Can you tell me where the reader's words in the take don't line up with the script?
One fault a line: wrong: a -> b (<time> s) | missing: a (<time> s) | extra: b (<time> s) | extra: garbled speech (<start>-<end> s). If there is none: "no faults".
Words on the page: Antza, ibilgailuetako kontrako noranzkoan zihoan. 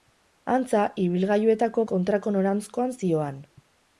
no faults